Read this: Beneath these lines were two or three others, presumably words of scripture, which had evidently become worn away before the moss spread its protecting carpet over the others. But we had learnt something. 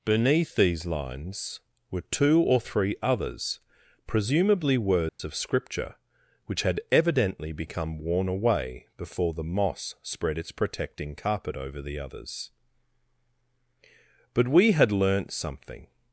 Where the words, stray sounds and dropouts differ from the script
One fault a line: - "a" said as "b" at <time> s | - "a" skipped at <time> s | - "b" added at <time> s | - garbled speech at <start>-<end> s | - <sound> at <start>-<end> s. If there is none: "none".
- dropout at 5.1-5.2 s